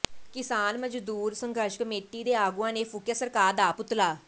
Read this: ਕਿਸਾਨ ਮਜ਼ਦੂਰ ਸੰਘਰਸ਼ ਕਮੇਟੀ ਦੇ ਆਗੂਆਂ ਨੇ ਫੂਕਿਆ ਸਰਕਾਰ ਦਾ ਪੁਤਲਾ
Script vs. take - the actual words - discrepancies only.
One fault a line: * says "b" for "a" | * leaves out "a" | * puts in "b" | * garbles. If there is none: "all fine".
all fine